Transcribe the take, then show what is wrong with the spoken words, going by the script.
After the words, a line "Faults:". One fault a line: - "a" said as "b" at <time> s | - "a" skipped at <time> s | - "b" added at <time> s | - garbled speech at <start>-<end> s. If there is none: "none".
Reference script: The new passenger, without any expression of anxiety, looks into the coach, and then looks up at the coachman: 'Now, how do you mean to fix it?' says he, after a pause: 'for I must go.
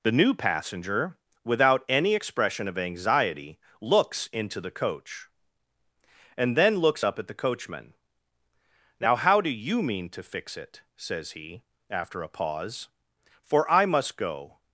The new passenger, without any expression of anxiety, looks into the coach, and then looks up at the coachman: 'Now, how do you mean to fix it?' says he, after a pause: 'for I must go.
Faults:
none